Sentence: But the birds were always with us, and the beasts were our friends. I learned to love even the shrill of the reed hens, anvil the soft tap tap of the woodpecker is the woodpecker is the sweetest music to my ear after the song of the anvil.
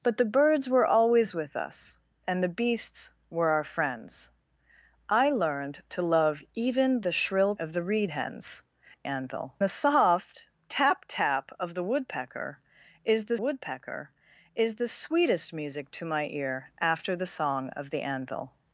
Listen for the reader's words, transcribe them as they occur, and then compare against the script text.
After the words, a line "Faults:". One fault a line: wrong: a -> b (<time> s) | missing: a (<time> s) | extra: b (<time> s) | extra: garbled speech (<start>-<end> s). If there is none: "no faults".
But the birds were always with us, and the beasts were our friends. I learned to love even the shrill of the reed hens, anvil the soft tap tap of the woodpecker is the woodpecker is the sweetest music to my ear after the song of the anvil.
Faults:
no faults